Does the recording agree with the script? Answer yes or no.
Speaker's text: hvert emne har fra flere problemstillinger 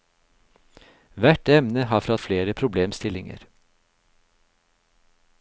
yes